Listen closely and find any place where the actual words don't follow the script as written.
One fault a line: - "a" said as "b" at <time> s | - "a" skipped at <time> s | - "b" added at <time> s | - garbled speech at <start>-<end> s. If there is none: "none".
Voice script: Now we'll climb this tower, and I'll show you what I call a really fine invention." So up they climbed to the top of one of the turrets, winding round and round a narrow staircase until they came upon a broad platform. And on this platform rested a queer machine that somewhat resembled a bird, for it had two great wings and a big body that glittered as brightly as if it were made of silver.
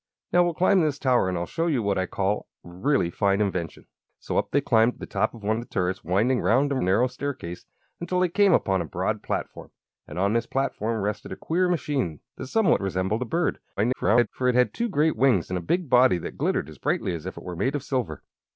- "round" skipped at 6.8 s
- garbled speech at 13.8-14.3 s